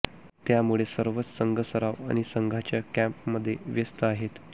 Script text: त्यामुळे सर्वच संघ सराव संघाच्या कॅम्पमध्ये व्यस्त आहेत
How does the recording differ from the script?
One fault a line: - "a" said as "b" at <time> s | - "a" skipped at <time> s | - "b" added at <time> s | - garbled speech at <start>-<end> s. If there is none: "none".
- "आणि" added at 2.1 s